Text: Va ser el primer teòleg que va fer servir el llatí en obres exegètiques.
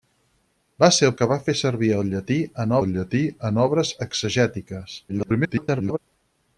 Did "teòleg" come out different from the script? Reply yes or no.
yes